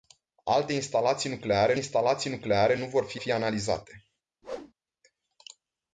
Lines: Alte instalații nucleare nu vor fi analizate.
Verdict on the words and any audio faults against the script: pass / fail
fail